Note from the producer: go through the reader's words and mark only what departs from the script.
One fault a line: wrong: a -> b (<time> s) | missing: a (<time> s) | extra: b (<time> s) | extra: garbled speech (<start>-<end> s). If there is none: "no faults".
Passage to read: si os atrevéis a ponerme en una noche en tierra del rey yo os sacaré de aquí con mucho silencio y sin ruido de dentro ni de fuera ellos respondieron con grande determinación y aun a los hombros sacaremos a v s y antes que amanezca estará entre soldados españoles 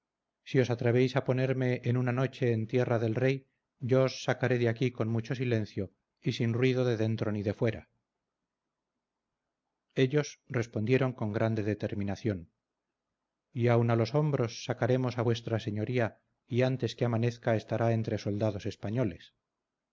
no faults